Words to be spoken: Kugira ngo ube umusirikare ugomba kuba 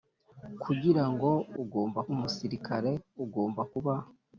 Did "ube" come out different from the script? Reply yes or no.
yes